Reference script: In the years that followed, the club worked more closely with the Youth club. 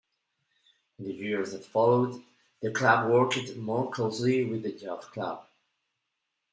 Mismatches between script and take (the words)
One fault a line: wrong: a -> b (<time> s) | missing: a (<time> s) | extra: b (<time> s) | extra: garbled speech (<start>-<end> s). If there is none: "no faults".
no faults